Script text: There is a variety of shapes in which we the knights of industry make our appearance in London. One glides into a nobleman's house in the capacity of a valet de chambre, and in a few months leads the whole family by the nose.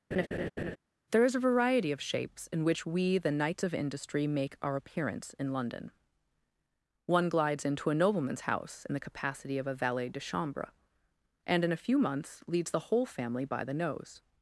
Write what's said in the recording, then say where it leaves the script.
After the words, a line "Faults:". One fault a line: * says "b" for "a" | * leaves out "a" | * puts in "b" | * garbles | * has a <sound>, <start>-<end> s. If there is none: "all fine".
There is a variety of shapes in which we the knights of industry make our appearance in London. One glides into a nobleman's house in the capacity of a valet de chambre, and in a few months leads the whole family by the nose.
Faults:
* has a laugh, 0.1-0.8 s